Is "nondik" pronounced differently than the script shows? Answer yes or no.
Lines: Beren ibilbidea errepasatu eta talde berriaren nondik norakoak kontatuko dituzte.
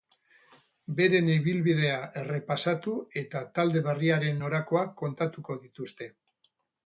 yes